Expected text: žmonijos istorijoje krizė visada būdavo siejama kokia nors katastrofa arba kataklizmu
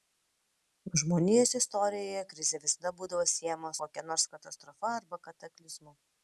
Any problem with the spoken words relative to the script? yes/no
no